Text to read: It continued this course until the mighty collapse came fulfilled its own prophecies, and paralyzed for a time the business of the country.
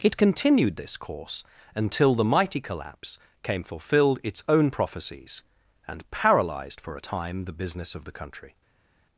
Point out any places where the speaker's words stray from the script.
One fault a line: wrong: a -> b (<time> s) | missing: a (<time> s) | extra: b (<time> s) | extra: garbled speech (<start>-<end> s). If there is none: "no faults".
no faults